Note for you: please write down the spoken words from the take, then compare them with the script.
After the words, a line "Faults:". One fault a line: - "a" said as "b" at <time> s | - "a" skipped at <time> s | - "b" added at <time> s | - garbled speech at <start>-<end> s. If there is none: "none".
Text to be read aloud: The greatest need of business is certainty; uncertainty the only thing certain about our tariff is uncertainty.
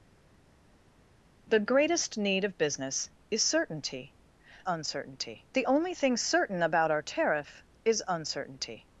The greatest need of business is certainty; uncertainty the only thing certain about our tariff is uncertainty.
Faults:
none